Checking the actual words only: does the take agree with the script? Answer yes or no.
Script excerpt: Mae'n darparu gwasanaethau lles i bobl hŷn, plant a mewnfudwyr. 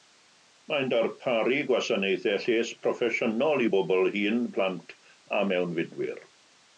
no